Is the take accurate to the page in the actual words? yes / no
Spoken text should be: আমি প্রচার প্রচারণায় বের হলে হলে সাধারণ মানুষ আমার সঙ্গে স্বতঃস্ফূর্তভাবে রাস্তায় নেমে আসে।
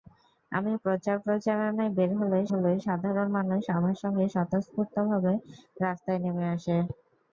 yes